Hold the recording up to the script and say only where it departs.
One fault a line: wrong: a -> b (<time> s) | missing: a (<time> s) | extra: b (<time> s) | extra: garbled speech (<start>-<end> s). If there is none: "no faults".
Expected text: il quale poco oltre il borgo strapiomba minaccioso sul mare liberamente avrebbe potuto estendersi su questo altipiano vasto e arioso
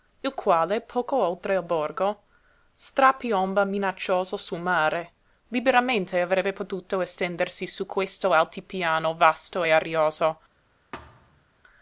no faults